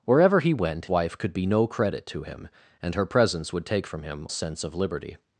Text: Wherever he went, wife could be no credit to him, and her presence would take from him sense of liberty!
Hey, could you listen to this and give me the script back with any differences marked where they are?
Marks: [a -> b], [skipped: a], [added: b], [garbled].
Wherever he went, wife could be no credit to him, and her presence would take from him sense of liberty!